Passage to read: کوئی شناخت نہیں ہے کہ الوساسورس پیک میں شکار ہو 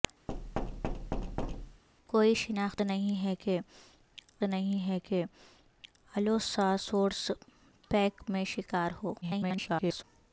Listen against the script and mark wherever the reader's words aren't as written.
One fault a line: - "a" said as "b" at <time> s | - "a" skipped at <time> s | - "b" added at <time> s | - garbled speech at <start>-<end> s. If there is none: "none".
- "نہیں ہے کہ" added at 4.4 s
- garbled speech at 9.2-10.0 s